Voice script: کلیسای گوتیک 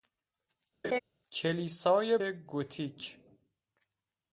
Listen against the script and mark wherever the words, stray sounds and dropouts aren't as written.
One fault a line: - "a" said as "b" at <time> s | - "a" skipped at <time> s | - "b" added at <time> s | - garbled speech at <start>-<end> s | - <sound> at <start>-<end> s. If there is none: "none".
- laugh at 0.8-1.0 s